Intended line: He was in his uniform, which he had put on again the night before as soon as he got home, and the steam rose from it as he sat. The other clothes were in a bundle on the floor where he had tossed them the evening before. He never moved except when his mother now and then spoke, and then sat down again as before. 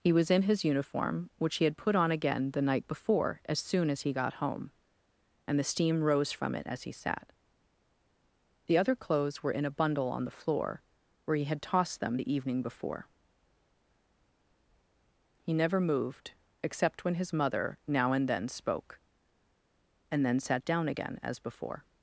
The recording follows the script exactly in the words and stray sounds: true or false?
true